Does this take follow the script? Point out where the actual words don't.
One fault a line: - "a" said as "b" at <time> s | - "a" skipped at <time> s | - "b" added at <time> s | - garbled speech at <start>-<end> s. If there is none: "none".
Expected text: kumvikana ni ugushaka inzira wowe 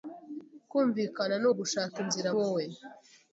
none